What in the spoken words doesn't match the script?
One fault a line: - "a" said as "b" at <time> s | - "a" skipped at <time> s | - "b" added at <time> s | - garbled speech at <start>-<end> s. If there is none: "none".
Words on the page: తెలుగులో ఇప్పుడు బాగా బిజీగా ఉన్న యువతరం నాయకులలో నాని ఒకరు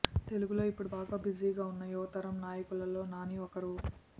none